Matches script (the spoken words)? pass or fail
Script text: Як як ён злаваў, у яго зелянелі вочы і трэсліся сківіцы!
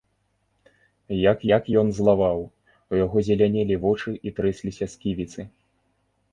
pass